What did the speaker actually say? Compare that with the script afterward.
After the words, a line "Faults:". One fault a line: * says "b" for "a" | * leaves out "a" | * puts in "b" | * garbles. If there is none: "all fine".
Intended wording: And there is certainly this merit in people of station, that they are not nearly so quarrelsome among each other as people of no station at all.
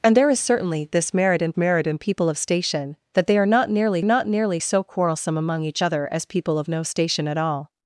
And there is certainly this merit in merit in people of station, that they are not nearly not nearly so quarrelsome among each other as people of no station at all.
Faults:
* puts in "merit in"
* puts in "not nearly"